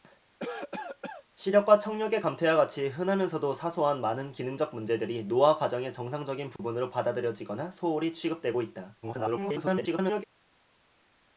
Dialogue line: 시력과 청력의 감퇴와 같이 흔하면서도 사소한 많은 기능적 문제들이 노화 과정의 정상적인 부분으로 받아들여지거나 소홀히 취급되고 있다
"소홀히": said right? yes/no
yes